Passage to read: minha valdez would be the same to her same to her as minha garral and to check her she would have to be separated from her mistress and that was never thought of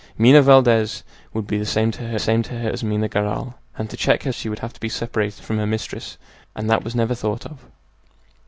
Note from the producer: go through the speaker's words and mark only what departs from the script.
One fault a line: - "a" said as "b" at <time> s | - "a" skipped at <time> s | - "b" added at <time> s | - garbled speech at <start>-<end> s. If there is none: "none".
none